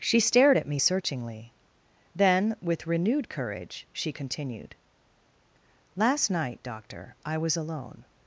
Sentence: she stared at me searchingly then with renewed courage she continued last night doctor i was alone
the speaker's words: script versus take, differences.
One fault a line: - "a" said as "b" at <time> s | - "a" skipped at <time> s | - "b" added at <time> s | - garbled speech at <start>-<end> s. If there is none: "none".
none